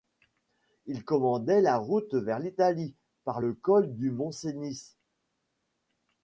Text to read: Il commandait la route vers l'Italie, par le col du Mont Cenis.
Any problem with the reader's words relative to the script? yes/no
no